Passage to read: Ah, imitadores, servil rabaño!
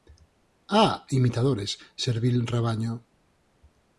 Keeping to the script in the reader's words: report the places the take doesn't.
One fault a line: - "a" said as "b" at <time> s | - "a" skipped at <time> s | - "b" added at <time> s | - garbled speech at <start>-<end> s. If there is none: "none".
none